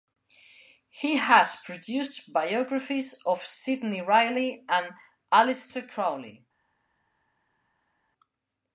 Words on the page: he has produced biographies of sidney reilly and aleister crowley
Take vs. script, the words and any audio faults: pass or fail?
pass